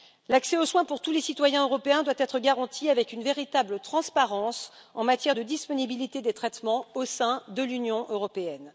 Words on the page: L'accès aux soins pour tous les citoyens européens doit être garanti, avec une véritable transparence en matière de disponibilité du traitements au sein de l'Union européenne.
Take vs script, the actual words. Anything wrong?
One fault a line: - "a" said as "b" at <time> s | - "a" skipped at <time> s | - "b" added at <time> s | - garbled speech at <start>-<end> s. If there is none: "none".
- "du" said as "des" at 6.2 s